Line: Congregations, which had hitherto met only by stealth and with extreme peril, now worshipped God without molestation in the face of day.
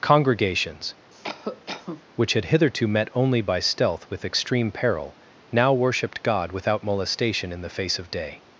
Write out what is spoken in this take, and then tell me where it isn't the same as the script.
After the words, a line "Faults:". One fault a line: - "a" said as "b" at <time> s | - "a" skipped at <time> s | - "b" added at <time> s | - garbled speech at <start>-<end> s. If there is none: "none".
Congregations, which had hitherto met only by stealth with extreme peril, now worshipped God without molestation in the face of day.
Faults:
- "and" skipped at 4.1 s